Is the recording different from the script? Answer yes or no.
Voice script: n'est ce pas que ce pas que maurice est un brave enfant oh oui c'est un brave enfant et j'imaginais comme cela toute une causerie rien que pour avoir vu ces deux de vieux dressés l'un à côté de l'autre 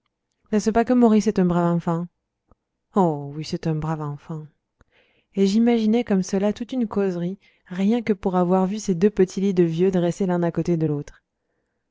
yes